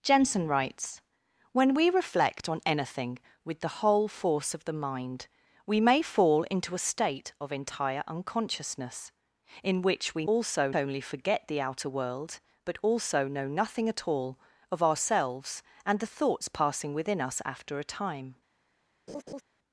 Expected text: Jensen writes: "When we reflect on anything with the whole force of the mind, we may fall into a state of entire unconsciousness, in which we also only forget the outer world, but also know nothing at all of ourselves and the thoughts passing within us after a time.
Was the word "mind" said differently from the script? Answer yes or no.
no